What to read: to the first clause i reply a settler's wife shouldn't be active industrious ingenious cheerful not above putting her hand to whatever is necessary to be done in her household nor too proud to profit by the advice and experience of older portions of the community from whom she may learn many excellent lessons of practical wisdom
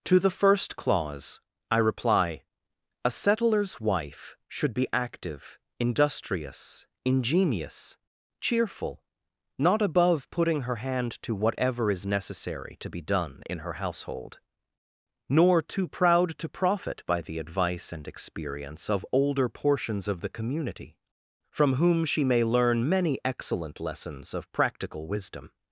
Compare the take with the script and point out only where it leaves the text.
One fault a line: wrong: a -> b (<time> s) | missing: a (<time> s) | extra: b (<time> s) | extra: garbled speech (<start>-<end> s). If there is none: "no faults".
wrong: shouldn't -> should (4.5 s)